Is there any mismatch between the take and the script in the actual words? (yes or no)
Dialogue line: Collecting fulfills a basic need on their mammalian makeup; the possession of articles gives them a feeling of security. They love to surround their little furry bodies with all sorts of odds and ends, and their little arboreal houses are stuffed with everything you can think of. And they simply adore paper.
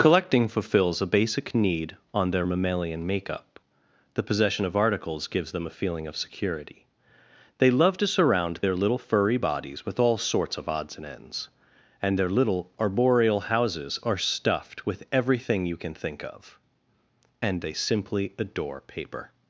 no